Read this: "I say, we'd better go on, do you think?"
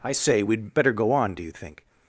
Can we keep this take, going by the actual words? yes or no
yes